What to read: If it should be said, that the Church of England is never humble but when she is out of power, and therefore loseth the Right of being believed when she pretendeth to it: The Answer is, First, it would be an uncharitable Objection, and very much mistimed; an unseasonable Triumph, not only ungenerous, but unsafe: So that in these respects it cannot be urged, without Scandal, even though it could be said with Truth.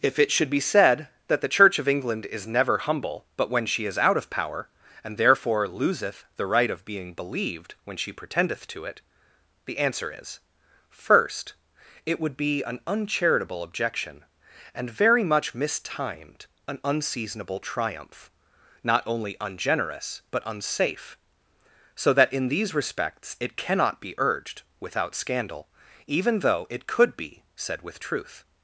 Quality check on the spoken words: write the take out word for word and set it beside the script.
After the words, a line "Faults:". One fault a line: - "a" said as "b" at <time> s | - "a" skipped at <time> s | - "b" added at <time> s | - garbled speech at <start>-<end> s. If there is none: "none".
If it should be said, that the Church of England is never humble but when she is out of power, and therefore loseth the Right of being believed when she pretendeth to it: The Answer is, First, it would be an uncharitable Objection, and very much mistimed; an unseasonable Triumph, not only ungenerous, but unsafe: So that in these respects it cannot be urged, without Scandal, even though it could be said with Truth.
Faults:
none